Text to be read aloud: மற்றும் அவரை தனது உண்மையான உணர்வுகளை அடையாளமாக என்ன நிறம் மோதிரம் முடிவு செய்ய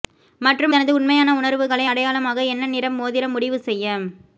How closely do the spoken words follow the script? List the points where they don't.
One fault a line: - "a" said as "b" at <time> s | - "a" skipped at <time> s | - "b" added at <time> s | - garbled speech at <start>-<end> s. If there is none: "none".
- "அவரை" skipped at 0.7 s